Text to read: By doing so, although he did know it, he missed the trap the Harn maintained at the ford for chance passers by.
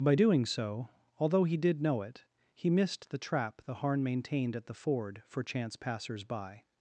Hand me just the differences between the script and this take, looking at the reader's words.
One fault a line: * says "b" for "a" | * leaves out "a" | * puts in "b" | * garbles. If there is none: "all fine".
all fine